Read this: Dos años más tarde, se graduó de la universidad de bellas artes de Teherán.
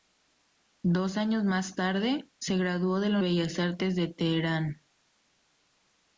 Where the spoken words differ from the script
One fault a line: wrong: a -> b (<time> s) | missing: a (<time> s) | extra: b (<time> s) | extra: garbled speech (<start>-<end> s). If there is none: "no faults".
missing: universidad de (3.2 s)